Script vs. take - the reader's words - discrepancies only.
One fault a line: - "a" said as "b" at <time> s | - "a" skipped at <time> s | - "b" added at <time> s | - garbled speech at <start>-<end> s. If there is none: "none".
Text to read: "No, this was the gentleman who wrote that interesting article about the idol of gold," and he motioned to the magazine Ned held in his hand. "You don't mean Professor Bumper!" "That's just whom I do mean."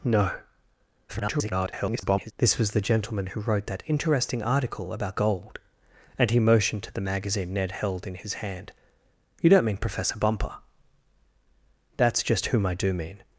- garbled speech at 1.1-2.3 s
- "the idol of" skipped at 5.2 s